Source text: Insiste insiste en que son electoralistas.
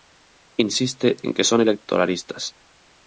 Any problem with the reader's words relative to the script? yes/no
yes